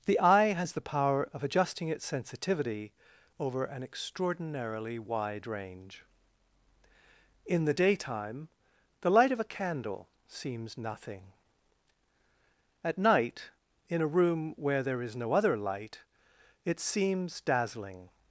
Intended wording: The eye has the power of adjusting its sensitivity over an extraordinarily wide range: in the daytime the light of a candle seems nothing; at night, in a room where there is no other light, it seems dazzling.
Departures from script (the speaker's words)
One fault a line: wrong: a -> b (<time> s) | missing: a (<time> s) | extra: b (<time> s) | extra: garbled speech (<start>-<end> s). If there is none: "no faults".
no faults